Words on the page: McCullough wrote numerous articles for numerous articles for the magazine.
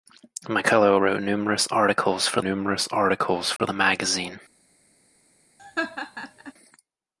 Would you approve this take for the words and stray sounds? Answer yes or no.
no